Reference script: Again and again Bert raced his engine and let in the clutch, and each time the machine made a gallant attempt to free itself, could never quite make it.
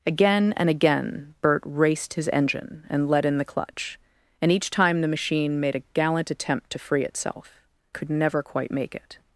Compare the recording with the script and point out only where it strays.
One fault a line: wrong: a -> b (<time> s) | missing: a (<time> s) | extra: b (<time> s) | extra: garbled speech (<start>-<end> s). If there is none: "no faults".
no faults